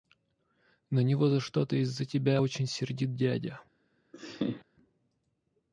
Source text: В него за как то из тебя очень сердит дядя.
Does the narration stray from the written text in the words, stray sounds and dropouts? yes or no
yes